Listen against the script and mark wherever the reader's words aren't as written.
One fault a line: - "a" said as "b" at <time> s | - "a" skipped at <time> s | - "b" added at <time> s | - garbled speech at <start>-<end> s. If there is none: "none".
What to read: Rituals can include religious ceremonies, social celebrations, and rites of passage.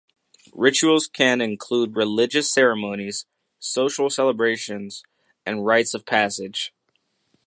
none